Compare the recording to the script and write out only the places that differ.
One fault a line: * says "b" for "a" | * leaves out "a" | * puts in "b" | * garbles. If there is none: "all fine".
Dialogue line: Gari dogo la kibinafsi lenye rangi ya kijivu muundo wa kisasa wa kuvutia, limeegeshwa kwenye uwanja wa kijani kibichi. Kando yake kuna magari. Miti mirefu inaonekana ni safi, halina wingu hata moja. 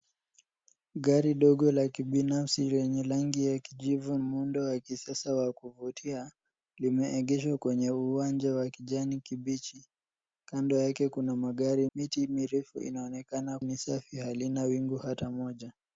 all fine